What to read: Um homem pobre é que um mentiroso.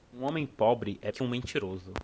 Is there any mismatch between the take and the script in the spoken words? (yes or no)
no